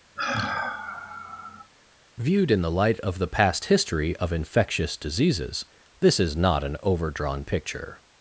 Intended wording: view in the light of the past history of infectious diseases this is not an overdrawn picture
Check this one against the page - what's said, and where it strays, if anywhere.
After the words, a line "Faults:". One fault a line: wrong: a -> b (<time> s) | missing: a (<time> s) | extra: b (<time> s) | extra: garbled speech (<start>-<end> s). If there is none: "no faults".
viewed in the light of the past history of infectious diseases this is not an overdrawn picture
Faults:
wrong: view -> viewed (2.2 s)